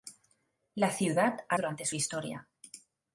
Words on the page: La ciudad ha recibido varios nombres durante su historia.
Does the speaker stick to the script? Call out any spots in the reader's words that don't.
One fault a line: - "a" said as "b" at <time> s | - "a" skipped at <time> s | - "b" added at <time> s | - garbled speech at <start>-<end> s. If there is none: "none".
- "recibido varios nombres" skipped at 1.6 s